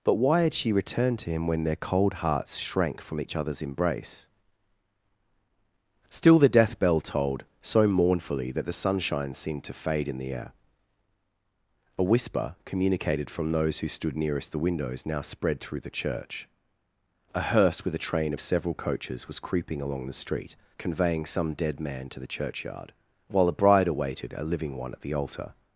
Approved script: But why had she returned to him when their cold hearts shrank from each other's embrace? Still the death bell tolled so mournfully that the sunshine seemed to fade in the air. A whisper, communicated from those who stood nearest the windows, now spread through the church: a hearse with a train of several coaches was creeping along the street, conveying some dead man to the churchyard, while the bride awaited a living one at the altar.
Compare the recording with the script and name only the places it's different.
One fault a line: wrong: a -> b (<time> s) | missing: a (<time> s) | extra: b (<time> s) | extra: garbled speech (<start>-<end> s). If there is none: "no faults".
wrong: the -> a (23.5 s)